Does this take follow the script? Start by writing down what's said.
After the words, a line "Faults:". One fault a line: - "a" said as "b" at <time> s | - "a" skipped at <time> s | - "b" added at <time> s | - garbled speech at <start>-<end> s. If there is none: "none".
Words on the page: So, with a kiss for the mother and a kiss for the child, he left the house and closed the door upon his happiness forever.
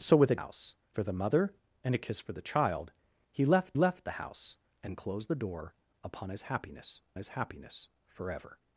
So, with a house for the mother and a kiss for the child, he left left the house and closed the door upon his happiness his happiness forever.
Faults:
- "kiss" said as "house" at 0.4 s
- "left" added at 3.8 s
- "his happiness" added at 7.2 s